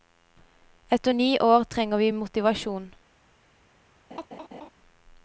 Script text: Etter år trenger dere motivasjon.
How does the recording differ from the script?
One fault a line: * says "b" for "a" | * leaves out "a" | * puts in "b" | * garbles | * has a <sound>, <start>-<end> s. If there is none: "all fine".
* puts in "ni"
* says "vi" for "dere"
* has a laugh, 4.1-4.7 s